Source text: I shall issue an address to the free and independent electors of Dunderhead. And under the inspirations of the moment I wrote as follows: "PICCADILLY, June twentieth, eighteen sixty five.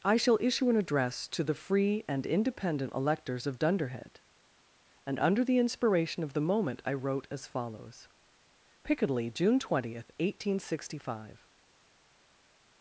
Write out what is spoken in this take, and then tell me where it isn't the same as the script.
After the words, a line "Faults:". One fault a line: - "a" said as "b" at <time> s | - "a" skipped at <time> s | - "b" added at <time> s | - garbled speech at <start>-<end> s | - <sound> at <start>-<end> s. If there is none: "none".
I shall issue an address to the free and independent electors of Dunderhead. And under the inspiration of the moment I wrote as follows: "PICCADILLY, June twentieth, eighteen sixty five.
Faults:
- "inspirations" said as "inspiration" at 5.6 s